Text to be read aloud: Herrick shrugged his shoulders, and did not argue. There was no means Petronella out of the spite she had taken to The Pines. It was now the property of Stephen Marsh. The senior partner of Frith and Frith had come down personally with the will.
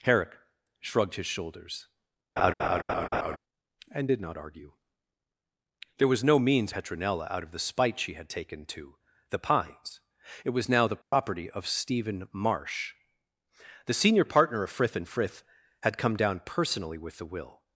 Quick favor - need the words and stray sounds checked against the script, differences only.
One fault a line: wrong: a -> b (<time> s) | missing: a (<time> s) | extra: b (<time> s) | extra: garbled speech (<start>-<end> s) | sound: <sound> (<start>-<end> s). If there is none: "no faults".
sound: laugh (2.4-3.4 s)
sound: dropout (11.0-11.1 s)